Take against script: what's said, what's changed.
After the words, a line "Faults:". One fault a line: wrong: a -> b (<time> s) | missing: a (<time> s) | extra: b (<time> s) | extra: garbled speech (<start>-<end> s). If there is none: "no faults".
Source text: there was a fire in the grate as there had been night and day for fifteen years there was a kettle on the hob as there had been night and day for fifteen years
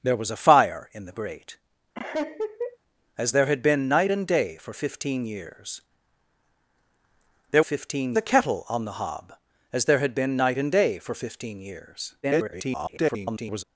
there was a fire in the grate as there had been night and day for fifteen years there fifteen a kettle on the hob as there had been night and day for fifteen years [garbled]
Faults:
wrong: was -> fifteen (7.6 s)
extra: garbled speech (12.2-13.6 s)